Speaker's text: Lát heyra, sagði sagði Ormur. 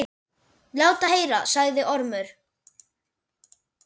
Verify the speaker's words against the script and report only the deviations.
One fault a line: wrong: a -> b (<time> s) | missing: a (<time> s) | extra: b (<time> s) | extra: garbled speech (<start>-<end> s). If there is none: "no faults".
missing: sagði (1.8 s)